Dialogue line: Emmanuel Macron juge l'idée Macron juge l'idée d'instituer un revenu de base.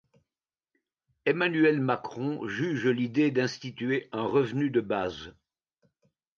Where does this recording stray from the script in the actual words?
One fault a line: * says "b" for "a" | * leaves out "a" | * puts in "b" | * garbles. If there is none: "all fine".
* leaves out "Macron juge l'idée"